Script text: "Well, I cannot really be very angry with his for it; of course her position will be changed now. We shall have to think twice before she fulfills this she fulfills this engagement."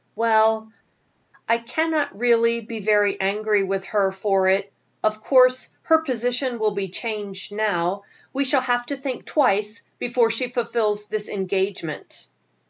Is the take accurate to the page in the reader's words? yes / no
no